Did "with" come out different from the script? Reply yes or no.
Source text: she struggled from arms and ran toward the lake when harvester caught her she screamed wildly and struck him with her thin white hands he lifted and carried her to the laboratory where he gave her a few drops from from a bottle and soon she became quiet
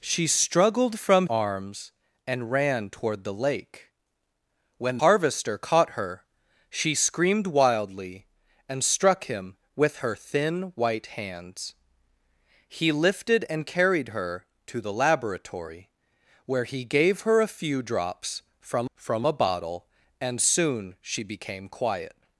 no